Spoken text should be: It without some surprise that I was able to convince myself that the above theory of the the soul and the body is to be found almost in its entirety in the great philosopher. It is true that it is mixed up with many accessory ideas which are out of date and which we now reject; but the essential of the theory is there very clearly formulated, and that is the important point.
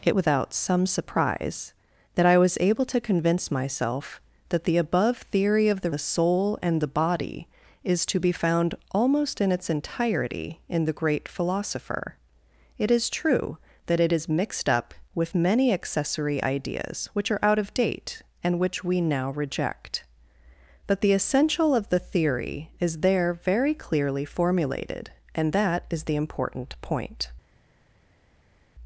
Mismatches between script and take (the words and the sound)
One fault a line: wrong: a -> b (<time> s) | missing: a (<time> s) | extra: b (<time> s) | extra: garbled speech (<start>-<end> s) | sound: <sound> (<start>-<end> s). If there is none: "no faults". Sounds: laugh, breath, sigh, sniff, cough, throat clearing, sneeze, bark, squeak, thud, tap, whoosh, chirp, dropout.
no faults